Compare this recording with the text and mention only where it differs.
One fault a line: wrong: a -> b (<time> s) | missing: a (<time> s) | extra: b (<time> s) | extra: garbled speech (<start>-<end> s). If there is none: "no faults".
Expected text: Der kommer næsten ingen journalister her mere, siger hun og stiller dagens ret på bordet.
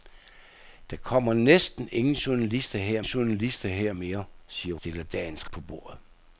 extra: journalister her (3.0 s)
missing: hun og (4.8 s)
missing: ret (5.5 s)